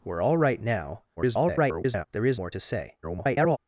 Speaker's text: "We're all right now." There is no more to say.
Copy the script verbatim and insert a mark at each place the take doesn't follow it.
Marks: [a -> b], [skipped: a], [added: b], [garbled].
"We're all right now." [garbled] There is [skipped: no] more to say. [garbled]